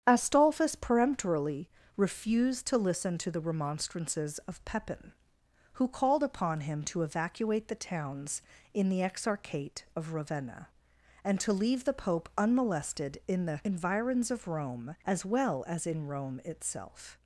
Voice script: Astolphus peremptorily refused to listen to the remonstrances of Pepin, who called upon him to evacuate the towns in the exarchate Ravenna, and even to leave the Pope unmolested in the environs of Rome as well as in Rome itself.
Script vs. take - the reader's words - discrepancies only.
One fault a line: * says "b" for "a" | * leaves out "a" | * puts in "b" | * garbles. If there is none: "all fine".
* puts in "of"
* leaves out "even"